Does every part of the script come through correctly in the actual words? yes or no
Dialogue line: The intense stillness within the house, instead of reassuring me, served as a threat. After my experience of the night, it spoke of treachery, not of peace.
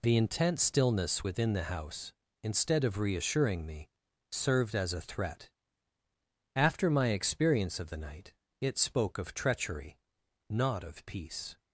yes